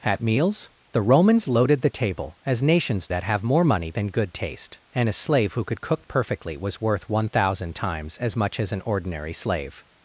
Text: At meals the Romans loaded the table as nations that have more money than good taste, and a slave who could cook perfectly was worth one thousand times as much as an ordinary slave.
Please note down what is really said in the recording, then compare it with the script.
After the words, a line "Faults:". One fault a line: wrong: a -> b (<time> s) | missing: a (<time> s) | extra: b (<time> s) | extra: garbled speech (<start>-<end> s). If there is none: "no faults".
At meals the Romans loaded the table as nations that have more money than good taste, and a slave who could cook perfectly was worth one thousand times as much as an ordinary slave.
Faults:
no faults